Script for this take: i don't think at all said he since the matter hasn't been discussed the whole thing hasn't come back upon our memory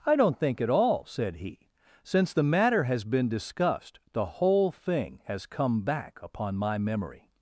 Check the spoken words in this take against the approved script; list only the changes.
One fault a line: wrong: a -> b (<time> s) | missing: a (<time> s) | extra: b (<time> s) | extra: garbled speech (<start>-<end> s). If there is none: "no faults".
wrong: hasn't -> has (2.9 s)
wrong: hasn't -> has (5.3 s)
wrong: our -> my (6.6 s)